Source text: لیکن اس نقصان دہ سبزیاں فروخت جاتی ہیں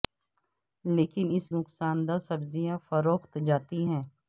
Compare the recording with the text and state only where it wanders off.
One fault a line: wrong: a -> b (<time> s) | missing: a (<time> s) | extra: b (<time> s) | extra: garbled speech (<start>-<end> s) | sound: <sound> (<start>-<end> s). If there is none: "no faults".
no faults